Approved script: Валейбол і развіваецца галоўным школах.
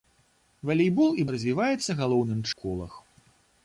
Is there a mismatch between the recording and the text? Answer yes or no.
no